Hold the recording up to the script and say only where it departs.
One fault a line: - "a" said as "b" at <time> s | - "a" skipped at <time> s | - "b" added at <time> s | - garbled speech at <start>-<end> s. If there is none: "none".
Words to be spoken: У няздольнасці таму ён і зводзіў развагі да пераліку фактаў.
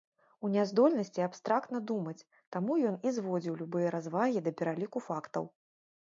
- "абстрактна думаць" added at 1.2 s
- "любыя" added at 3.7 s